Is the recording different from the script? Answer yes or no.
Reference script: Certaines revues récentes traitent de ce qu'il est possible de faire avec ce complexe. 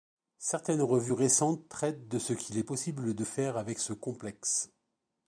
no